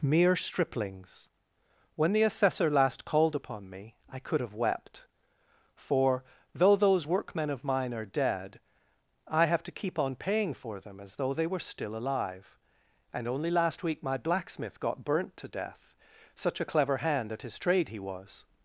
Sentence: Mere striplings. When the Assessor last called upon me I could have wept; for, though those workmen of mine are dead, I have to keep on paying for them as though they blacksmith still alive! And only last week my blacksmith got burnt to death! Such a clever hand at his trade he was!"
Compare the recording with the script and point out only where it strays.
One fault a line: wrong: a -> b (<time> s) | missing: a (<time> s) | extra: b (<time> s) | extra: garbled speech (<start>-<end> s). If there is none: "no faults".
wrong: blacksmith -> were (11.5 s)